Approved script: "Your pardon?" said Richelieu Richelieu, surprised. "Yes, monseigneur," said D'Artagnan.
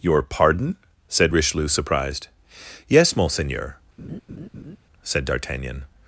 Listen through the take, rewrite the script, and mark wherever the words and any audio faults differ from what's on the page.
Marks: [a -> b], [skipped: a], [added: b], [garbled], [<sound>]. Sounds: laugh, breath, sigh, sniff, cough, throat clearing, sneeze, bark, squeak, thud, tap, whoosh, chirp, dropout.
"Your pardon?" said Richelieu [skipped: Richelieu,] surprised. "Yes, monseigneur," [laugh] said D'Artagnan.